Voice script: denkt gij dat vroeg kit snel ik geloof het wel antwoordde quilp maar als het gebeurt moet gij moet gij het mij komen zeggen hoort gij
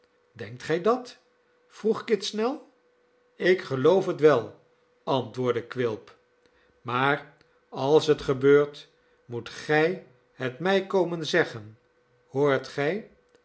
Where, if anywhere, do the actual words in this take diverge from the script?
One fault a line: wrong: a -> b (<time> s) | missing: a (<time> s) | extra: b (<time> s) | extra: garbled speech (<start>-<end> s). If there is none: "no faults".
missing: moet gij (10.1 s)